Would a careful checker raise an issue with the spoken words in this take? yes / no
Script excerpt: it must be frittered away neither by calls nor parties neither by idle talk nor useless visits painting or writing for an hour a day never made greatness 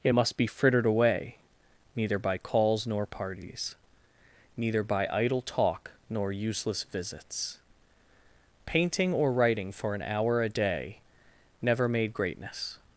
no